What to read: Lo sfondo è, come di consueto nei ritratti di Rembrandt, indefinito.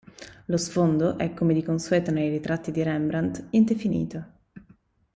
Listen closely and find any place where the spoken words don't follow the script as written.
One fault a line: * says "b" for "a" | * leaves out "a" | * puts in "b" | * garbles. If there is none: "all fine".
all fine